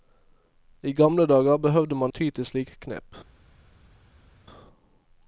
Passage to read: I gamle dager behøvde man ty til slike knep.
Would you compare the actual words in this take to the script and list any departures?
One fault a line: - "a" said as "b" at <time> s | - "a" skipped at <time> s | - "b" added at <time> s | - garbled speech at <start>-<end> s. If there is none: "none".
none